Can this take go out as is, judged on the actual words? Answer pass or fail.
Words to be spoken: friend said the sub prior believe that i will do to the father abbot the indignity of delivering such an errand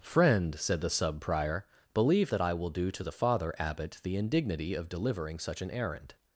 pass